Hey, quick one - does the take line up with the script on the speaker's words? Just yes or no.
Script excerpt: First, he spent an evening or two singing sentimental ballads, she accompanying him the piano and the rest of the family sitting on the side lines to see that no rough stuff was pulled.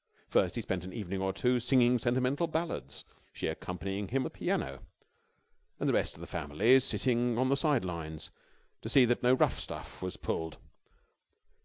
yes